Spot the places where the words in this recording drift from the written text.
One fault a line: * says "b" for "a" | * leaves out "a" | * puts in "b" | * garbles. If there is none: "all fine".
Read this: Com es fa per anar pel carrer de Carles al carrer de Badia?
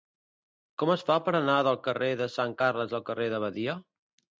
* says "del" for "pel"
* puts in "Sant"